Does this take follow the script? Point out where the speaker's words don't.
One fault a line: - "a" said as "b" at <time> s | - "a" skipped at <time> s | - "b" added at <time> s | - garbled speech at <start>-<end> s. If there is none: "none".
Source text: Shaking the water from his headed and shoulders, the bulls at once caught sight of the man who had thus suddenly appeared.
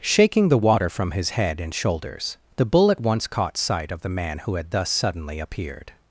- "headed" said as "head" at 1.3 s
- "bulls" said as "bull" at 2.6 s